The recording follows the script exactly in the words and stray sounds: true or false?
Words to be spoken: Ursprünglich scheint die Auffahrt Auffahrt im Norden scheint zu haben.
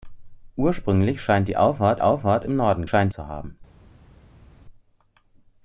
true